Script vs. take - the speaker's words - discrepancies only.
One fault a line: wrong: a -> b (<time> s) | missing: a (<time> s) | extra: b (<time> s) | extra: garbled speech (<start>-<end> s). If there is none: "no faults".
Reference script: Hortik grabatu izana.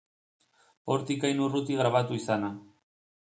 extra: hain urruti (1.3 s)